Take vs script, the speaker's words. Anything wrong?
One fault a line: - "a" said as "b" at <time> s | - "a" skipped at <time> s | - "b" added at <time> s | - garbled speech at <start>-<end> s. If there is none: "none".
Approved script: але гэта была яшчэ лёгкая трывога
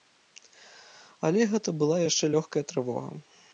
none